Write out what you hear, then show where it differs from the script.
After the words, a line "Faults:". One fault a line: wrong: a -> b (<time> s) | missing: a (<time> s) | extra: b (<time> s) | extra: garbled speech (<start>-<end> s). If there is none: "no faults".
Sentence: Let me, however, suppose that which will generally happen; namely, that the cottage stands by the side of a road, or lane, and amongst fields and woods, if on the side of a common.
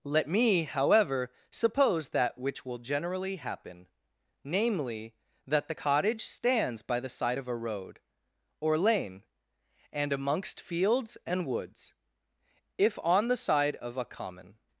Let me, however, suppose that which will generally happen; namely, that the cottage stands by the side of a road, or lane, and amongst fields and woods, if on the side of a common.
Faults:
no faults